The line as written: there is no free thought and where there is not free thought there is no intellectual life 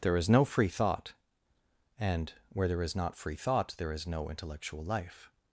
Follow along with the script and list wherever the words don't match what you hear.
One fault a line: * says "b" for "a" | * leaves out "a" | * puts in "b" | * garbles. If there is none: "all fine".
all fine